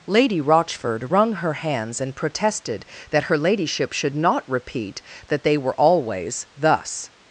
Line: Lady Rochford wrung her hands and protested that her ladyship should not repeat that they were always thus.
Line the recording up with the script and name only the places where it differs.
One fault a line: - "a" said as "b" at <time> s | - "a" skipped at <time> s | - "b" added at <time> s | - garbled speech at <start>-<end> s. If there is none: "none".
none